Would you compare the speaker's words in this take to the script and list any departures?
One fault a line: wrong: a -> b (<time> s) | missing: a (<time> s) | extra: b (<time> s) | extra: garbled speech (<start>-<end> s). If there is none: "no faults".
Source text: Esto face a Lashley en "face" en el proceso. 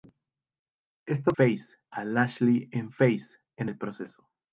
no faults